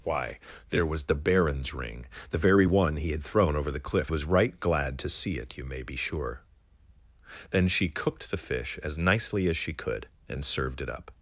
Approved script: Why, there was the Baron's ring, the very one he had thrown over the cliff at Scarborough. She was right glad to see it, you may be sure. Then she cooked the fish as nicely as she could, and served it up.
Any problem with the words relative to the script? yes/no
yes